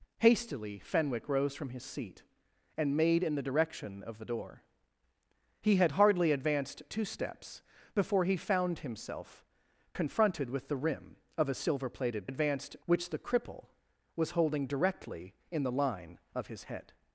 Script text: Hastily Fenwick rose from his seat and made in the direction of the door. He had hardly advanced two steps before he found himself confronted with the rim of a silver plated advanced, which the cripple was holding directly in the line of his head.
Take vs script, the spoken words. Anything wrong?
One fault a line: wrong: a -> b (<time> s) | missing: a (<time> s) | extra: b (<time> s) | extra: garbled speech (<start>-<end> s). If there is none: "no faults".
no faults